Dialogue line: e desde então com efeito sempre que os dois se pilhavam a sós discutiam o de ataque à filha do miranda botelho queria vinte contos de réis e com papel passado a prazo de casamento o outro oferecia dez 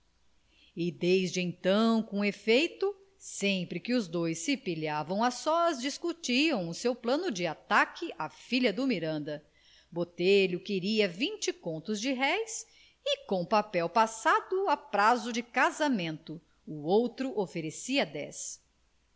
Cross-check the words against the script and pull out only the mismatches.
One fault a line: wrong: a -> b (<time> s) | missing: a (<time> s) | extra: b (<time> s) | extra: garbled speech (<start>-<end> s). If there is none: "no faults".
extra: seu plano (6.7 s)